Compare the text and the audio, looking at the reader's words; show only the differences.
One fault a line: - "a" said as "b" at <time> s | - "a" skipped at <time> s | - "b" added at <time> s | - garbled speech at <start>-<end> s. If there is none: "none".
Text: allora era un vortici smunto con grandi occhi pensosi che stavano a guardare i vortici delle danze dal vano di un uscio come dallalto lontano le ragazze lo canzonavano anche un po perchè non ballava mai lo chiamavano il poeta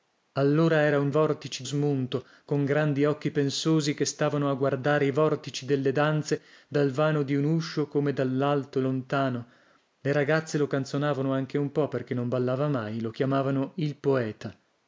none